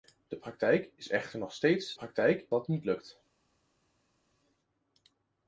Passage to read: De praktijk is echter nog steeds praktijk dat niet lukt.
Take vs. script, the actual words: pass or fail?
pass